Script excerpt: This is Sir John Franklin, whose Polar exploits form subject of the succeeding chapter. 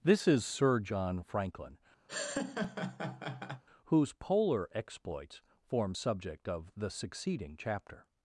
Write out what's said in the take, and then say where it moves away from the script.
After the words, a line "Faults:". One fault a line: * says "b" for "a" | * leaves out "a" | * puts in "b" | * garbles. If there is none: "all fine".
This is Sir John Franklin, whose Polar exploits form subject of the succeeding chapter.
Faults:
all fine